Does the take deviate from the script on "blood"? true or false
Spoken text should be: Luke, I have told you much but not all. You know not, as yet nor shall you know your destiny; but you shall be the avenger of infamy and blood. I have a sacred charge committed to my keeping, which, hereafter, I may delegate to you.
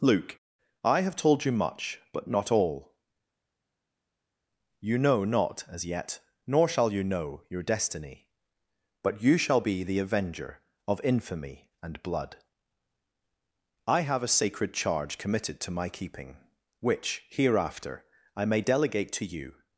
false